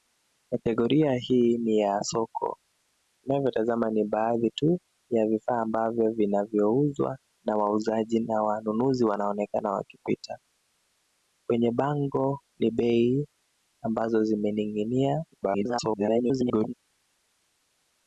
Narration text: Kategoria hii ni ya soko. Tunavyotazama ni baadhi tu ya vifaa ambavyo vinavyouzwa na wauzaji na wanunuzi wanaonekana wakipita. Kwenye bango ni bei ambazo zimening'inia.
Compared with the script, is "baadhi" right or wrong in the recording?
right